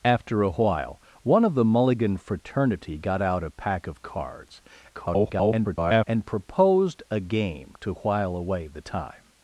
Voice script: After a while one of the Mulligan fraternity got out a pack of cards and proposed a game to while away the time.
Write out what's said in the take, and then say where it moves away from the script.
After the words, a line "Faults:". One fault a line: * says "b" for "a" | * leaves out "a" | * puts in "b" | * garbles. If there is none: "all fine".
After a while one of the Mulligan fraternity got out a pack of cards [garbled] and proposed a game to while away the time.
Faults:
* garbles